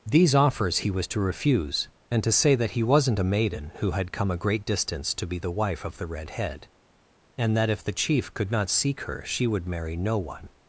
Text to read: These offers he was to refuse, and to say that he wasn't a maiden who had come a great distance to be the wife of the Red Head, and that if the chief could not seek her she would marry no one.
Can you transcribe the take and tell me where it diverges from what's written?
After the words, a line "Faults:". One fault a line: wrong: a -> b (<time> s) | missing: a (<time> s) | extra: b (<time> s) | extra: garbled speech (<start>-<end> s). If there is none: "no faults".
These offers he was to refuse, and to say that he wasn't a maiden who had come a great distance to be the wife of the Red Head, and that if the chief could not seek her she would marry no one.
Faults:
no faults